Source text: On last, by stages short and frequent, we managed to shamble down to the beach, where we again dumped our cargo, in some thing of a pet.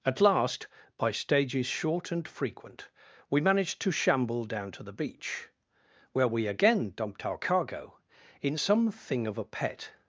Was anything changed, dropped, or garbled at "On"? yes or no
yes